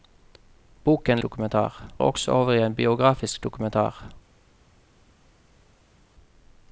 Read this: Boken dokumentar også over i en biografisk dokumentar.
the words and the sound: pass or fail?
pass